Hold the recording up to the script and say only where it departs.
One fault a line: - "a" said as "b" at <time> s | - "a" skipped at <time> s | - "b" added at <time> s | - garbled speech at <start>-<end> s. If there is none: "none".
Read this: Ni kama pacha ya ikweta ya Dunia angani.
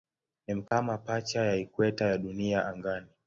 none